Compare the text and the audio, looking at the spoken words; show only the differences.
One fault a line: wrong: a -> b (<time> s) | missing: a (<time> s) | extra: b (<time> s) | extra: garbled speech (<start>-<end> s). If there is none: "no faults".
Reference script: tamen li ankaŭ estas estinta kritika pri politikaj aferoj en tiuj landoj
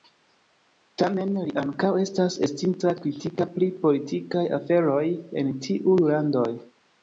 no faults